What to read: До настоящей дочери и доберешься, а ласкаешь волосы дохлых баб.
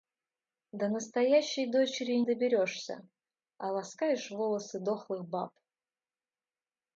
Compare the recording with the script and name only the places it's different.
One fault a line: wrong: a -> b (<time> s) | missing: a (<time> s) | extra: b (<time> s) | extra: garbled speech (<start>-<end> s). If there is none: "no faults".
no faults